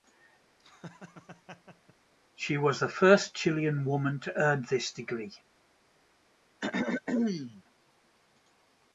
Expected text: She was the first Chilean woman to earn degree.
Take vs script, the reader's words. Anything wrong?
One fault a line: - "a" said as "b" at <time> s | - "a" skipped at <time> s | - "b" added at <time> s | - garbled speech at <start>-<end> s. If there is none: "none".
- "this" added at 4.7 s